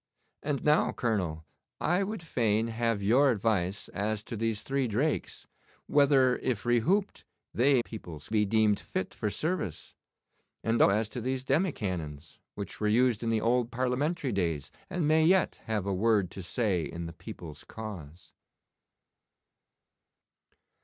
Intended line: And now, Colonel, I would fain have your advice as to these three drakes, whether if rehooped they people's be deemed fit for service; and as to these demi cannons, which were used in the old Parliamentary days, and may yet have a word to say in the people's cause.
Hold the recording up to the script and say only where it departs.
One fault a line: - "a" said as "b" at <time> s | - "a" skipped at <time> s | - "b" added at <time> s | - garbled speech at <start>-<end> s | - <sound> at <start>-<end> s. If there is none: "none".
none